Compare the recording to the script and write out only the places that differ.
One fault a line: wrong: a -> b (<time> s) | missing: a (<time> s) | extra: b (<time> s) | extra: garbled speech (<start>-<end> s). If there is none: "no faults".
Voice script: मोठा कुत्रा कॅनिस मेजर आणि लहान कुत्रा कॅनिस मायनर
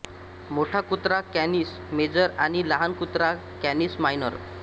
no faults